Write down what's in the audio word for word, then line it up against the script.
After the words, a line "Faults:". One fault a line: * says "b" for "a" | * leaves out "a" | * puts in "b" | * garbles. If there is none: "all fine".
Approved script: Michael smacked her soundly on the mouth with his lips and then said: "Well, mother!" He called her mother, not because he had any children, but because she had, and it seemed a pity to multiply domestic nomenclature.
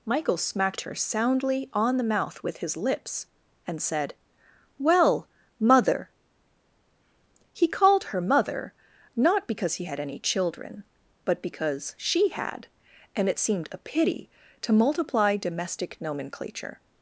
Michael smacked her soundly on the mouth with his lips and said: "Well, mother!" He called her mother, not because he had any children, but because she had, and it seemed a pity to multiply domestic nomenclature.
Faults:
* leaves out "then"